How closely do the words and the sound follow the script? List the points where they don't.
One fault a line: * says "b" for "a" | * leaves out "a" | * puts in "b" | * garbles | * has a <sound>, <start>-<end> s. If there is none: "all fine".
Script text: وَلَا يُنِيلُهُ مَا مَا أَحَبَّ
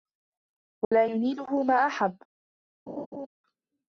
* has a dropout, 0.8-0.9 s
* leaves out "مَا"
* has a laugh, 2.9-3.3 s